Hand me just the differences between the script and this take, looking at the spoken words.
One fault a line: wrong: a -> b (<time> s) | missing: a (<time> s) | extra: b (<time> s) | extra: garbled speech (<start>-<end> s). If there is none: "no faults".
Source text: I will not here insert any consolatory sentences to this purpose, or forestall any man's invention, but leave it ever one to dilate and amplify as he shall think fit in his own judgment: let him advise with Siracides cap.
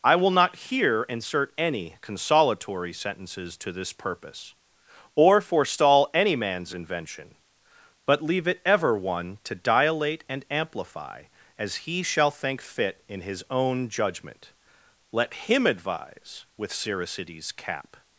no faults